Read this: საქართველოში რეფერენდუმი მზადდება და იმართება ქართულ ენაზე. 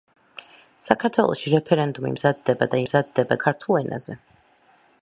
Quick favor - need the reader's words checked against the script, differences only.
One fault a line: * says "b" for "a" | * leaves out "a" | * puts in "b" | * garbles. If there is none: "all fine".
* says "მზადდება" for "იმართება"